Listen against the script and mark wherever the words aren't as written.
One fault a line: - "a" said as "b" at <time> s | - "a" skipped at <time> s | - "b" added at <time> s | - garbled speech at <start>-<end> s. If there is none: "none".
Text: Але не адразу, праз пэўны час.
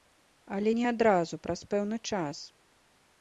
none